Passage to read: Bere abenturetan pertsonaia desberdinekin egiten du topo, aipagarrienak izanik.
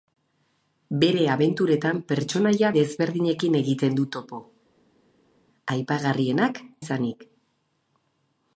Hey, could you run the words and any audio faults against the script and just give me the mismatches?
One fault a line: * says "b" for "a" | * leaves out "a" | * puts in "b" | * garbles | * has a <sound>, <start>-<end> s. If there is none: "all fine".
all fine